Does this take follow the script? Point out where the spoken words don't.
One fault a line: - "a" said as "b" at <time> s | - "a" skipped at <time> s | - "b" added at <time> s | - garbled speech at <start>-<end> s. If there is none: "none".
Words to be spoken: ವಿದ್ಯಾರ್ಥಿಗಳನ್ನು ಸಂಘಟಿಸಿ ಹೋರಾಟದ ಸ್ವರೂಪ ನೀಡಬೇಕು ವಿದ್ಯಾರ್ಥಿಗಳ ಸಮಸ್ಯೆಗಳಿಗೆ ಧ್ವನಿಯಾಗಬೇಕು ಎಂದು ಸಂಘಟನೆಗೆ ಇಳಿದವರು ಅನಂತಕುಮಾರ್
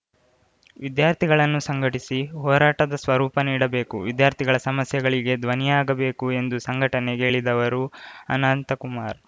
none